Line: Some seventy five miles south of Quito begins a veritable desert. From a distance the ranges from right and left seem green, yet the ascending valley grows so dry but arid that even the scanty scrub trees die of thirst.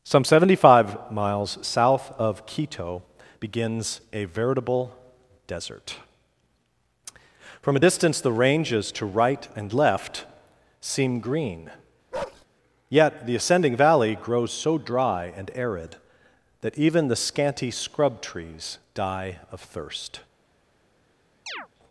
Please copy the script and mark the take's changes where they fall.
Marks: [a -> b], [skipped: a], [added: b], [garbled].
Some seventy five miles south of Quito begins a veritable desert. From a distance the ranges [from -> to] right and left seem green, yet the ascending valley grows so dry [but -> and] arid that even the scanty scrub trees die of thirst.